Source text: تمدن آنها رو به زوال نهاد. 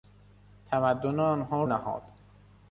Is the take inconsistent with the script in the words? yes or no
yes